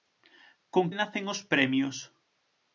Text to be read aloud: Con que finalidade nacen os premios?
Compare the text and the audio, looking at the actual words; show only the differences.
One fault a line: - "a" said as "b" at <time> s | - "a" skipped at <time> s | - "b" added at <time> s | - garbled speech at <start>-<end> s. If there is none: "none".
- "que finalidade" skipped at 0.8 s